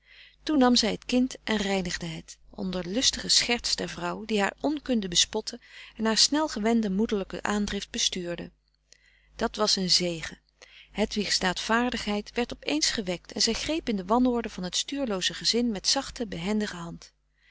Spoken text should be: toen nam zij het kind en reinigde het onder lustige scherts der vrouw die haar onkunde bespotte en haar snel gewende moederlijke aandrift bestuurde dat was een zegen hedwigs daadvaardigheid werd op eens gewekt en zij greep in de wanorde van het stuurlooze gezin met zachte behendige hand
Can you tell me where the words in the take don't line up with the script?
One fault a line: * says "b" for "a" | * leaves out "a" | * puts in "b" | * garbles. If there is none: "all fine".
all fine